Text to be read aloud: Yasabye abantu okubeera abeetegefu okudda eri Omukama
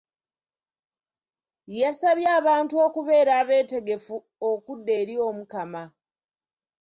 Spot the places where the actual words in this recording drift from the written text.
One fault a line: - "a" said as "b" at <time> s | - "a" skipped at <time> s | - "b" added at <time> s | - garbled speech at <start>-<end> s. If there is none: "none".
none